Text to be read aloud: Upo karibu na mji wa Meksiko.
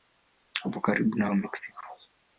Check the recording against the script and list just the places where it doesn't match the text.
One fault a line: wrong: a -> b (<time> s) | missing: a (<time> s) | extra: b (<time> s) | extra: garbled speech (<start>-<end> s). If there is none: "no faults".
missing: mji (1.3 s)